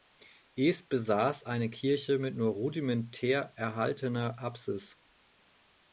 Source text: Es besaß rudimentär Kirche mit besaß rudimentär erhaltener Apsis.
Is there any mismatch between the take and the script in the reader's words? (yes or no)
yes